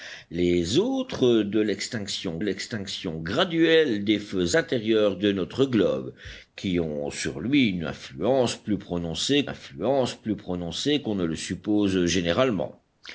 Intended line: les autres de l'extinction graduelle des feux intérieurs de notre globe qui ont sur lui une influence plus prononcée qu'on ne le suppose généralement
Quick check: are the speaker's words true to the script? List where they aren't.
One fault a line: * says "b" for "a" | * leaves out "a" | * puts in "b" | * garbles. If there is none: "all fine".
* puts in "l'extinction"
* puts in "influence plus prononcée"